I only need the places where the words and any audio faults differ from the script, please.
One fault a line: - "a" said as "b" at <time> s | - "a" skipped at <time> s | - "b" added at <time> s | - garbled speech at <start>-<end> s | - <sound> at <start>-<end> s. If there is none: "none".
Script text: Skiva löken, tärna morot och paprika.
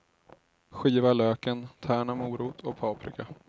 none